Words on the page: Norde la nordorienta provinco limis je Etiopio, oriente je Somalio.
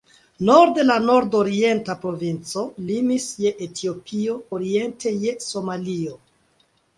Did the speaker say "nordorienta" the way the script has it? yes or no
yes